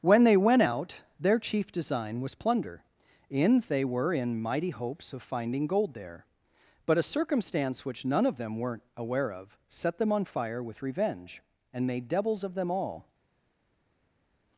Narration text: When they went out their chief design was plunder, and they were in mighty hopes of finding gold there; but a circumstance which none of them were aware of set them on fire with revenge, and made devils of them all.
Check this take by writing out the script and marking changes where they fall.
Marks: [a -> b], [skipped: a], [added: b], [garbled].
When they went out their chief design was plunder, [and -> in] they were in mighty hopes of finding gold there; but a circumstance which none of them [were -> weren't] aware of set them on fire with revenge, and made devils of them all.